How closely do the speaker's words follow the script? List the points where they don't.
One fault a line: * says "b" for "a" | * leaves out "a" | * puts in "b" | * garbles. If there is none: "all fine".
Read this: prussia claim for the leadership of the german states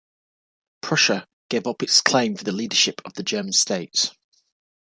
* puts in "gave up its"